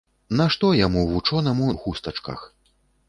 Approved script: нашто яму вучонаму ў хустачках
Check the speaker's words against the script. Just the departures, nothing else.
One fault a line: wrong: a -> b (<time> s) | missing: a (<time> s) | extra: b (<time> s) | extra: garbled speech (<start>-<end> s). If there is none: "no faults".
no faults